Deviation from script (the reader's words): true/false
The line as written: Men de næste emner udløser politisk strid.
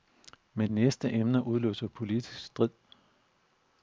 true